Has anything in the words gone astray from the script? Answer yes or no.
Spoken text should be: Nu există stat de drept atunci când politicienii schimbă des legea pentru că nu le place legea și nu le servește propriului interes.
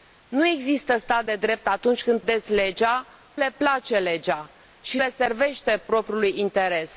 yes